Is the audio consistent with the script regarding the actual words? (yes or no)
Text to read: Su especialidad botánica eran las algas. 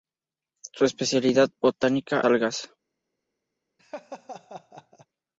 no